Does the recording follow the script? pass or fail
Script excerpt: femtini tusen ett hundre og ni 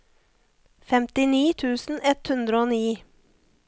pass